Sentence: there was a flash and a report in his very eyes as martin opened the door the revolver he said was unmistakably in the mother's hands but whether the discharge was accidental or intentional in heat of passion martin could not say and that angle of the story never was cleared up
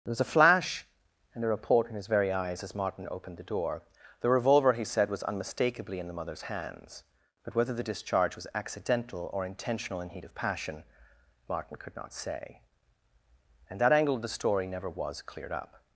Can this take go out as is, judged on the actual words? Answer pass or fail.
pass